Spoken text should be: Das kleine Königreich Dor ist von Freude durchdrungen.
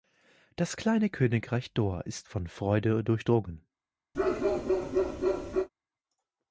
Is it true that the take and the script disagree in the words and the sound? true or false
true